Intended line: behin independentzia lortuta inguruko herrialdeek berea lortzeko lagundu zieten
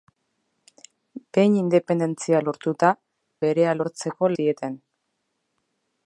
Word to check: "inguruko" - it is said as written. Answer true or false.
false